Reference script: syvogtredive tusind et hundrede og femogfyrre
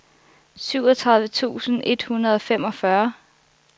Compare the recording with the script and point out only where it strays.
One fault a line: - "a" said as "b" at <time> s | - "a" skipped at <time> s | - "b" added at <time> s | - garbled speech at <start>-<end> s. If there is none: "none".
none